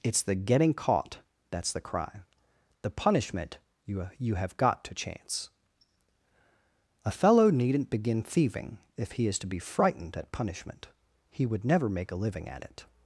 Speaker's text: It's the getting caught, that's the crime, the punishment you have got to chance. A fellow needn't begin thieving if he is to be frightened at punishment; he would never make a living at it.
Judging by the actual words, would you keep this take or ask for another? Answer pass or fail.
fail